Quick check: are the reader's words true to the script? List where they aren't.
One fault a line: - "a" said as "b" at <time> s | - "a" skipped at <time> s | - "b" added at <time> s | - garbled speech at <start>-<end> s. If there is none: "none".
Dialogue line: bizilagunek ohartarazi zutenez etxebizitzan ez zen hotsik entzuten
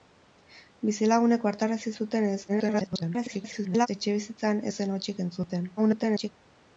- garbled speech at 2.5-3.9 s
- garbled speech at 5.8-6.3 s